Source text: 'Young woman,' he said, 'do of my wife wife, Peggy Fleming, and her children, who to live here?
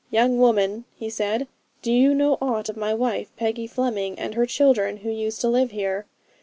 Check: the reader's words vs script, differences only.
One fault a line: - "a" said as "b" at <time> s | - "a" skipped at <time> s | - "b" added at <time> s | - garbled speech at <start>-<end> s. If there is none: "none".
- "you know aught" added at 1.9 s
- "wife" skipped at 3.3 s
- "used" added at 5.1 s